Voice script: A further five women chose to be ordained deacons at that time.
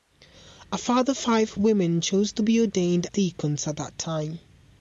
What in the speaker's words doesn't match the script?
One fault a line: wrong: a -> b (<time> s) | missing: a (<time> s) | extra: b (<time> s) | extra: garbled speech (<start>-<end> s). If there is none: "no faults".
no faults